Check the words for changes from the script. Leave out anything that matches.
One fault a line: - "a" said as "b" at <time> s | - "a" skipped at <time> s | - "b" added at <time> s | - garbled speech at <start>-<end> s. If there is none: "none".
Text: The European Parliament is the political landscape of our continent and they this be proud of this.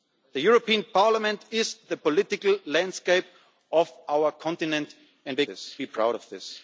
none